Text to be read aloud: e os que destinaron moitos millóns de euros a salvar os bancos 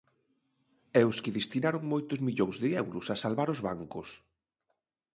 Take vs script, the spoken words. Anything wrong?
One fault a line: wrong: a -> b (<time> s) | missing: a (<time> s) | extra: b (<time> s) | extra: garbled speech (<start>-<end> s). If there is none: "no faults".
no faults